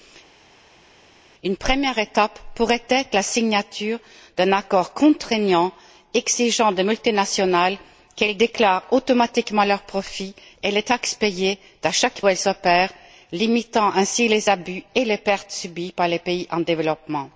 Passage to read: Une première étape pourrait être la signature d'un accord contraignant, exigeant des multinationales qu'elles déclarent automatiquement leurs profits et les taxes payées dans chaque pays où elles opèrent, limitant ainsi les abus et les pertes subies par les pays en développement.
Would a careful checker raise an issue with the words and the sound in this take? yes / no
yes